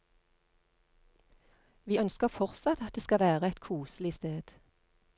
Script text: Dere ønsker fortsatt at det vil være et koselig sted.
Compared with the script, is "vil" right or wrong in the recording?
wrong